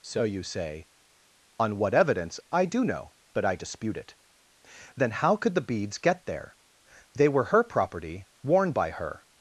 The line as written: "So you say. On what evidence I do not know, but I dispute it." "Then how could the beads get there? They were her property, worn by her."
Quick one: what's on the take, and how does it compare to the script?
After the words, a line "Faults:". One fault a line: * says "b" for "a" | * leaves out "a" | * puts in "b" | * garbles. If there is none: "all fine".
"So you say. On what evidence I do know, but I dispute it." "Then how could the beads get there? They were her property, worn by her."
Faults:
* leaves out "not"